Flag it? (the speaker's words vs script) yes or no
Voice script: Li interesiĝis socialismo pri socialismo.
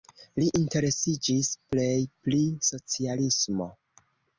yes